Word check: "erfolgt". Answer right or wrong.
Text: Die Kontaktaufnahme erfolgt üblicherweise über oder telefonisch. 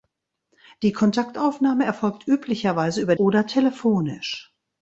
right